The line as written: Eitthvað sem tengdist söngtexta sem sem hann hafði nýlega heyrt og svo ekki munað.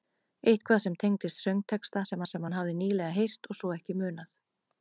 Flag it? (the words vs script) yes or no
no